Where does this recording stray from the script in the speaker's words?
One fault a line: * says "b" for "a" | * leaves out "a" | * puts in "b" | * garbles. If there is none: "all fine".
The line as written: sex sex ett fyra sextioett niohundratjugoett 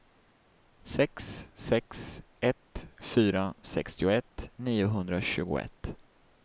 all fine